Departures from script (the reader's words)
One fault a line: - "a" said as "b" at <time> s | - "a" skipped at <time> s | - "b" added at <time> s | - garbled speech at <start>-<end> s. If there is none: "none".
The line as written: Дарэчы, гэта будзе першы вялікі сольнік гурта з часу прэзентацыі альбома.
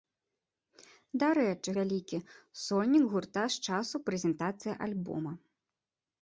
- "гэта будзе першы" skipped at 1.7 s